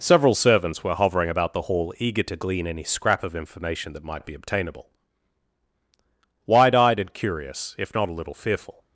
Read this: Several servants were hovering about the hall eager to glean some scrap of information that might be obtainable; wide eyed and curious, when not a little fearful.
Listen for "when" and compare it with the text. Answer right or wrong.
wrong